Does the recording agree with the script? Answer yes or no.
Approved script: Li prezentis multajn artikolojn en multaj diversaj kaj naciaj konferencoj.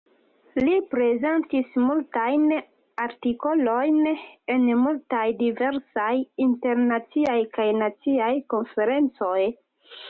no